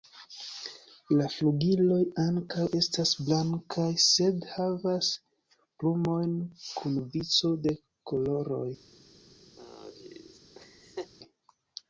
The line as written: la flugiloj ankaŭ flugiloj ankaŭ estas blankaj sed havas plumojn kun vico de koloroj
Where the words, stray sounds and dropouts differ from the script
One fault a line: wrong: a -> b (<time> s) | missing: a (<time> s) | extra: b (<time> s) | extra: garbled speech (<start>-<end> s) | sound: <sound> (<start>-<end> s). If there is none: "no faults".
missing: flugiloj ankaŭ (2.6 s)
sound: laugh (9.6-11.1 s)